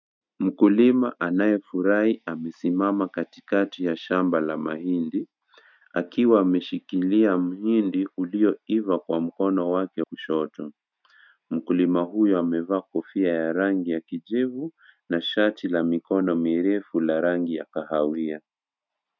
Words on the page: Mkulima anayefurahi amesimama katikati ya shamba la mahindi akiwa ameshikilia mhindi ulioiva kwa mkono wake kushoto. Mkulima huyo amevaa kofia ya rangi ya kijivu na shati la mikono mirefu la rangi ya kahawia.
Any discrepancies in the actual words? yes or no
no